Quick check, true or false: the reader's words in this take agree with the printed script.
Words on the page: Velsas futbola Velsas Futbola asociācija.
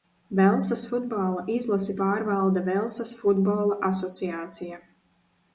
false